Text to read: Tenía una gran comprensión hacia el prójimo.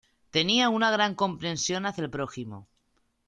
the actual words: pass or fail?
pass